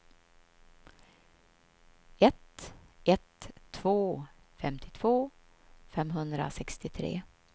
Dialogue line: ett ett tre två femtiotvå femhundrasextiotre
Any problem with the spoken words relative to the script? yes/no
yes